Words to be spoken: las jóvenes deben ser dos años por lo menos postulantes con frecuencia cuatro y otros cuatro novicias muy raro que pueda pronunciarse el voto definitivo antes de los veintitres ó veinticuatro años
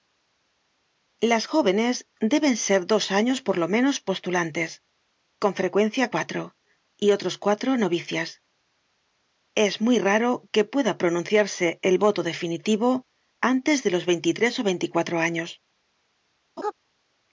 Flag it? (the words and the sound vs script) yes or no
yes